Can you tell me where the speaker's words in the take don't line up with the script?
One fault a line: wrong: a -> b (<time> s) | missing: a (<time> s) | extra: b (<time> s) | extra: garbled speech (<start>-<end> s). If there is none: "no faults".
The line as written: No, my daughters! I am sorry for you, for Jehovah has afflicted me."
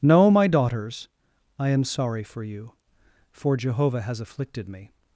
no faults